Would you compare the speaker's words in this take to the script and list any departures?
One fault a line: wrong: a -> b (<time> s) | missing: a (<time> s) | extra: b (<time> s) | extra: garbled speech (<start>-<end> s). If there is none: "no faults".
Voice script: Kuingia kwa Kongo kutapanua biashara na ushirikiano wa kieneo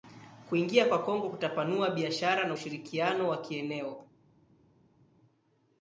no faults